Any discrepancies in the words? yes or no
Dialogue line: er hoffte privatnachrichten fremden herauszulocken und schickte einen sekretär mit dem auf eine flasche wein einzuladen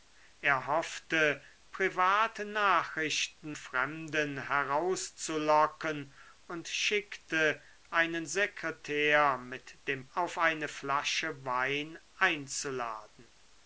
no